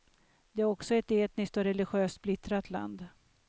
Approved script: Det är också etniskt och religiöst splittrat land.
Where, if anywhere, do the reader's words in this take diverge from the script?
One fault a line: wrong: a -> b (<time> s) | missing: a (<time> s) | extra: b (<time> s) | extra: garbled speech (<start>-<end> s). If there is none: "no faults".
extra: ett (0.9 s)